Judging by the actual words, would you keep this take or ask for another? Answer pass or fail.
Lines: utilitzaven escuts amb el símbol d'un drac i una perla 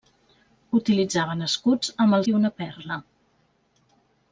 fail